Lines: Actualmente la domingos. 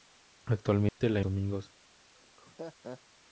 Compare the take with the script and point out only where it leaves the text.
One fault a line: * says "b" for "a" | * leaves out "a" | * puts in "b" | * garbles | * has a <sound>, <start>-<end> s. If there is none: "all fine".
* has a dropout, 0.9-1.0 s
* has a laugh, 2.1-3.0 s